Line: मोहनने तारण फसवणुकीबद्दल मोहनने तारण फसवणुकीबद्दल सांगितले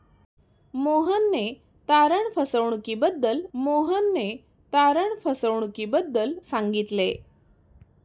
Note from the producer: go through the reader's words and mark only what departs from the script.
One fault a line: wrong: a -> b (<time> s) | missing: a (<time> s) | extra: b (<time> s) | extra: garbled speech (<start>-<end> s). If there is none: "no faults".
no faults